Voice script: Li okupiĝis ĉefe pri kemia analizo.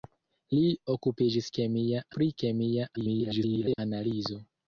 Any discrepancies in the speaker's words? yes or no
yes